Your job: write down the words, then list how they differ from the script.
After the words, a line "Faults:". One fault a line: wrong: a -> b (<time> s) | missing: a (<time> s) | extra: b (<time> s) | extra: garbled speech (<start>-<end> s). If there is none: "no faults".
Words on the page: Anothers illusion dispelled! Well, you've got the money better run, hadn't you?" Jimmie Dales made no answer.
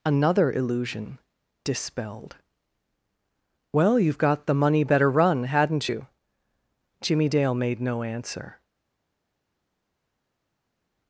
Another illusion dispelled! Well, you've got the money better run, hadn't you?" Jimmie Dale made no answer.
Faults:
wrong: Anothers -> Another (0.0 s)
wrong: Dales -> Dale (7.3 s)